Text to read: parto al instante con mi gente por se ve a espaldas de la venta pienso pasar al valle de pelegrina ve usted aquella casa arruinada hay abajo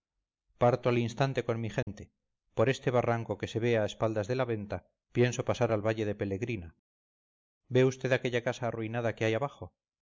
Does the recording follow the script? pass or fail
fail